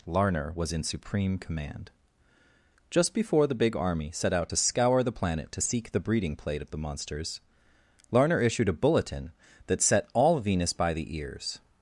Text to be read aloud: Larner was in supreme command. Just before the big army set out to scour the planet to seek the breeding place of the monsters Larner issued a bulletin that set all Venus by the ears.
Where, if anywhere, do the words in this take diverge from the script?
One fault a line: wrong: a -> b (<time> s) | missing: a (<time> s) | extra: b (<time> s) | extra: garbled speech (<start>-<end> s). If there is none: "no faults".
wrong: place -> plate (6.4 s)